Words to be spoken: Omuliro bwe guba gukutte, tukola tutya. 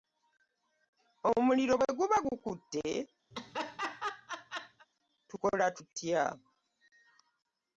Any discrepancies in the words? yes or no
no